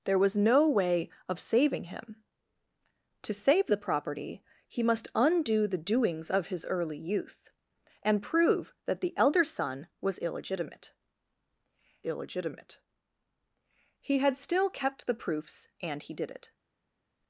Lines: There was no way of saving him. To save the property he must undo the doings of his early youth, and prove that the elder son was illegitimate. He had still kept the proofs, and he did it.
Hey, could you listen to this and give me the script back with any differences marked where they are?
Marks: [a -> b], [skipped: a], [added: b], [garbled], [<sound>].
There was no way of saving him. To save the property he must undo the doings of his early youth, and prove that the elder son was illegitimate. [added: illegitimate] He had still kept the proofs, and he did it.